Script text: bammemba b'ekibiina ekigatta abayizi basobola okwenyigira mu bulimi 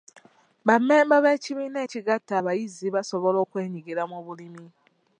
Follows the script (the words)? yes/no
yes